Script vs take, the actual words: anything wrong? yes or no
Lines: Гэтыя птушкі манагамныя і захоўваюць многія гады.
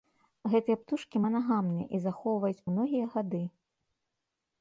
no